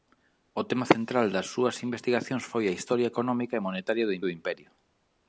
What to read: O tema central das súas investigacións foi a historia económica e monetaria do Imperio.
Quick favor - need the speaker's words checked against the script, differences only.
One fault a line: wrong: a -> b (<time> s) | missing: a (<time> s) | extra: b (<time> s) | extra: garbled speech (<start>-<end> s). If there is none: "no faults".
extra: do (4.2 s)